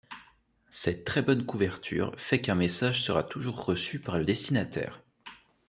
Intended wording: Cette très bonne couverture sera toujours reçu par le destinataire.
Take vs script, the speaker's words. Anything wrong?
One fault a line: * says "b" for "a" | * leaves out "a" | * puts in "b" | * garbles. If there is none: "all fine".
* puts in "fait qu'un message"